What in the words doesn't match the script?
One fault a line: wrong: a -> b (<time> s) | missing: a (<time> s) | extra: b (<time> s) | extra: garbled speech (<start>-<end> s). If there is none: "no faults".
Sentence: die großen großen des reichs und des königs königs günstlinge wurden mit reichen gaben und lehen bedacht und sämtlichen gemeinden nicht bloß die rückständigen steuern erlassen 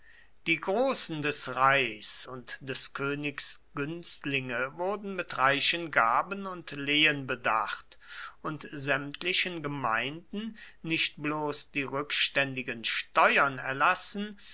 missing: großen (1.2 s)
missing: königs (3.6 s)